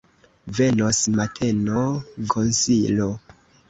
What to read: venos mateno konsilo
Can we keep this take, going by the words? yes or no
yes